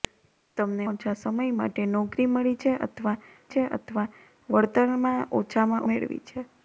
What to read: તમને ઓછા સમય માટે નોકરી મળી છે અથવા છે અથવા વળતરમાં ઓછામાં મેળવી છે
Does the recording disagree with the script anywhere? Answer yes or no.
no